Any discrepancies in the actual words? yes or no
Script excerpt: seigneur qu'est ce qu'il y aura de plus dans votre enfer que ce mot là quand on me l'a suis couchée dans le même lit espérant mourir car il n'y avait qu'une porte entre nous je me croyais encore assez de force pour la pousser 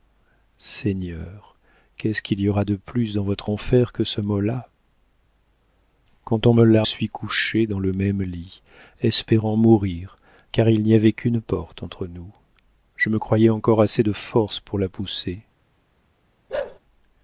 no